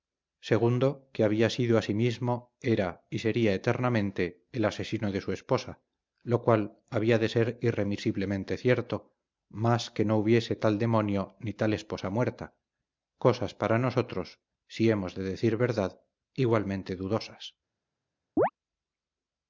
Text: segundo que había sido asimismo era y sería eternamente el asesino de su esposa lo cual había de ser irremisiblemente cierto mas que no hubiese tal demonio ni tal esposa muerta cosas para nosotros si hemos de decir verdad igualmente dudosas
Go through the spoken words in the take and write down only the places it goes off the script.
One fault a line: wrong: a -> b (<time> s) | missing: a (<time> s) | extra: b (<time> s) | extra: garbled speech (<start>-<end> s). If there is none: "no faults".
no faults